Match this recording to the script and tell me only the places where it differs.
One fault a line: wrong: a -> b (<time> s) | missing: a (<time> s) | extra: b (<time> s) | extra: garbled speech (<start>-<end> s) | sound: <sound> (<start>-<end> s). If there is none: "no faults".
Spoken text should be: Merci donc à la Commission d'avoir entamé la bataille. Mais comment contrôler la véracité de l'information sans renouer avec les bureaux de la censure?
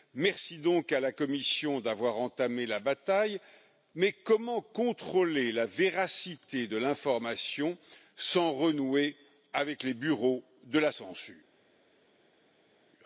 no faults